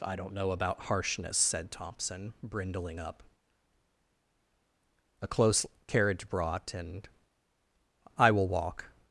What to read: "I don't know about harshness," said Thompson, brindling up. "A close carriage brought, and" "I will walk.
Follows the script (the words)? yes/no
yes